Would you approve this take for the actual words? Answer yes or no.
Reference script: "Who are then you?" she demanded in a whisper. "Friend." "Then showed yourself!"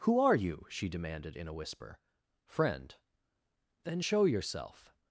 no